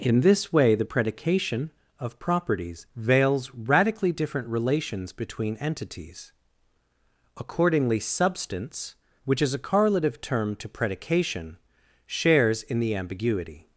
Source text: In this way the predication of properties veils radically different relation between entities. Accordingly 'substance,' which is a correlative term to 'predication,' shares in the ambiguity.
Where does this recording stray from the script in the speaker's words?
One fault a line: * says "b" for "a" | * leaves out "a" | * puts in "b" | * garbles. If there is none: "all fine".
* says "relations" for "relation"